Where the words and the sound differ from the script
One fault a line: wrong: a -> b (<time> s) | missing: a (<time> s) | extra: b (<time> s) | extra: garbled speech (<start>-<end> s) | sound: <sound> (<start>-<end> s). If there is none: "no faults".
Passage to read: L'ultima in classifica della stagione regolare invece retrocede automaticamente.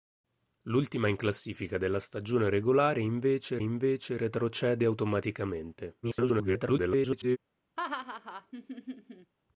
extra: invece (3.6 s)
extra: garbled speech (6.0-7.4 s)
sound: laugh (7.8-9.3 s)